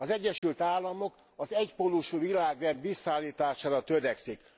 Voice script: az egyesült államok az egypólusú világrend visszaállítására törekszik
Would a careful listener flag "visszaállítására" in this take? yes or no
no